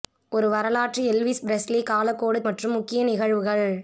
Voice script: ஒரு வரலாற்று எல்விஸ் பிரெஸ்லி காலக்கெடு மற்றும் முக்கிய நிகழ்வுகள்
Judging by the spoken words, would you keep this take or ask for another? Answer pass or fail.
pass